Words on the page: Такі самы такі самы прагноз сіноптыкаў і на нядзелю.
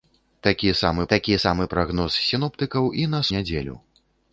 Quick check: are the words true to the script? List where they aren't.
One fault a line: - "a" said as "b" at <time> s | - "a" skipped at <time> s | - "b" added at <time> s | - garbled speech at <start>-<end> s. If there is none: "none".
none